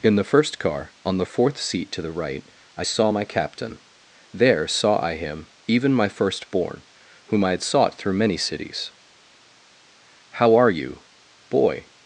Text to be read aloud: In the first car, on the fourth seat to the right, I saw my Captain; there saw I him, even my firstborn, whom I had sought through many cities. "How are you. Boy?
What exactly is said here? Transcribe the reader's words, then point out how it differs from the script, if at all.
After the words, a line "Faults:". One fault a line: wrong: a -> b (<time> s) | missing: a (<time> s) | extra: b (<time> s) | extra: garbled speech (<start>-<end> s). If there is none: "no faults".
In the first car, on the fourth seat to the right, I saw my Captain; there saw I him, even my firstborn, whom I had sought through many cities. "How are you. Boy?
Faults:
no faults